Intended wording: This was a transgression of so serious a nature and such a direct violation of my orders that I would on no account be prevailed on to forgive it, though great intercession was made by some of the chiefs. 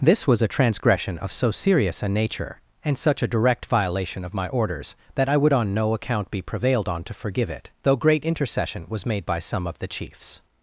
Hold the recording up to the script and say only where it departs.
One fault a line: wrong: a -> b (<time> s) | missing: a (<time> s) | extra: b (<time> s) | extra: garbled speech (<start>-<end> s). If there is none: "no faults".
no faults